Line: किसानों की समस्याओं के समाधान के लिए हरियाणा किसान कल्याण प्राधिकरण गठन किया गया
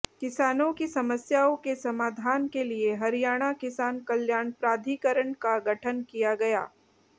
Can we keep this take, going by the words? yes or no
no